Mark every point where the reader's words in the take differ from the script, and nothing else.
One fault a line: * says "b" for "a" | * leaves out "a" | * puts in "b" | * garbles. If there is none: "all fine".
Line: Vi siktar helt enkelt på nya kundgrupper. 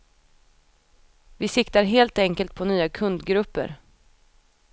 all fine